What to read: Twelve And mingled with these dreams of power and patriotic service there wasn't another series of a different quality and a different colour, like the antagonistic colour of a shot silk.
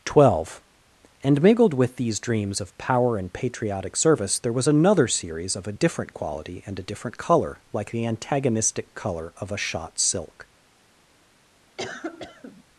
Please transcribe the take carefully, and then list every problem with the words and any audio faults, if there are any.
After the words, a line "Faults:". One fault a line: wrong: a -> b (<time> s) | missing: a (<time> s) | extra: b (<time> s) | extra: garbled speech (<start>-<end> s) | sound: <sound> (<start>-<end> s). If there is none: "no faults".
Twelve And mingled with these dreams of power and patriotic service there was another series of a different quality and a different colour, like the antagonistic colour of a shot silk.
Faults:
wrong: wasn't -> was (4.5 s)
sound: cough (11.8-12.6 s)